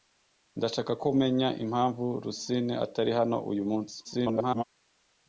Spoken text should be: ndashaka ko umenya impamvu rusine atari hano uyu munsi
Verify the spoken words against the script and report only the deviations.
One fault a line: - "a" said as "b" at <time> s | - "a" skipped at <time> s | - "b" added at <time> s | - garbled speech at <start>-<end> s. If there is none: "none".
- garbled speech at 4.0-4.6 s